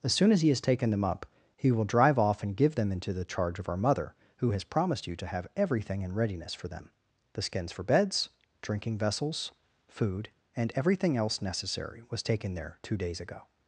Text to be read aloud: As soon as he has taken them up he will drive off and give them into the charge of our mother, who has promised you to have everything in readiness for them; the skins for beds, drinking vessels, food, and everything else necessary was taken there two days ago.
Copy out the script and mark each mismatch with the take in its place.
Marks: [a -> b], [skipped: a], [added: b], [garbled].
As soon as he has taken them up he will drive off and give them into the charge of our mother, who has promised you to have everything in readiness for them; the skins for beds, drinking vessels, food, and everything else necessary was taken there two days ago.